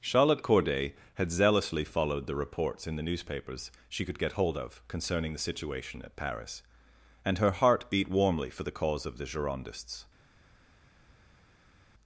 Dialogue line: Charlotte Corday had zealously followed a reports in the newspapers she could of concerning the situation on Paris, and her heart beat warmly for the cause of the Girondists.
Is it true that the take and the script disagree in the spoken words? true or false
true